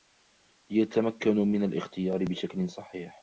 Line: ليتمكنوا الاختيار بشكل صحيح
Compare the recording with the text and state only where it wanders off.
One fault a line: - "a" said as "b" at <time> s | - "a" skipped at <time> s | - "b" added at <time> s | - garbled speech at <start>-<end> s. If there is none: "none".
- "من" added at 1.4 s